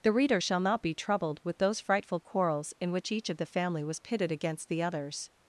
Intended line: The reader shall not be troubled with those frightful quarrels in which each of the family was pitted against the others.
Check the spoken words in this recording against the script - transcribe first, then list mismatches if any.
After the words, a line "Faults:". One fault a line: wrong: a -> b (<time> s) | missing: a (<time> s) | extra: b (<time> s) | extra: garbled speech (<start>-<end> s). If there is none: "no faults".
The reader shall not be troubled with those frightful quarrels in which each of the family was pitted against the others.
Faults:
no faults